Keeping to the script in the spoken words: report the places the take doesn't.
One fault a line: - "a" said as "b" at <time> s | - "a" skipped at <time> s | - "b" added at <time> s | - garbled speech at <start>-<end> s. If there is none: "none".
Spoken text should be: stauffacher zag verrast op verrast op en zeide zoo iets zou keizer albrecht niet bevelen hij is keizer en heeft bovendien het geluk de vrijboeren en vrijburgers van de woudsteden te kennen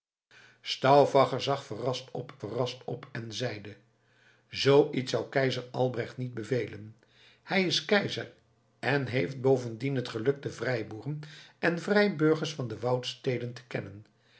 none